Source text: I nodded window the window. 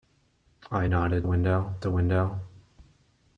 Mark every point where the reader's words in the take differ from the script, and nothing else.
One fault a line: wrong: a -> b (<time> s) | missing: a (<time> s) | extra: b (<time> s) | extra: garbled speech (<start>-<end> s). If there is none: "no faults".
no faults